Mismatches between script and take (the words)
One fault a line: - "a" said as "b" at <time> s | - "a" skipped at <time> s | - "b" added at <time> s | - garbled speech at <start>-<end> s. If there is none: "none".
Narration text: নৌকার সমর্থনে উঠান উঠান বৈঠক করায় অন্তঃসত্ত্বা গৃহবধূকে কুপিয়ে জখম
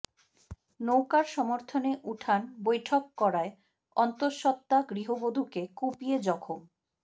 - "উঠান" skipped at 2.4 s